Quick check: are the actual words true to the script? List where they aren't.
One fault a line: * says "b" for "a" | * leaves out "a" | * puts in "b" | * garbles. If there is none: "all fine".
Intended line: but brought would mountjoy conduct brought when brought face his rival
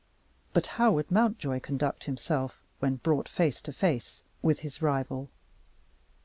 * says "how" for "brought"
* says "himself" for "brought"
* puts in "to face with"